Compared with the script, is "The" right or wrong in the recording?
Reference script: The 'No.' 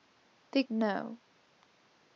right